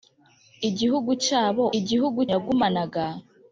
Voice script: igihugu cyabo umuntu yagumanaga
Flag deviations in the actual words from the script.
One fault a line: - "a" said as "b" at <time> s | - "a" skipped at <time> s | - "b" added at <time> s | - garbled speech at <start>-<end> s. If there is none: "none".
- "umuntu" said as "igihugu" at 1.8 s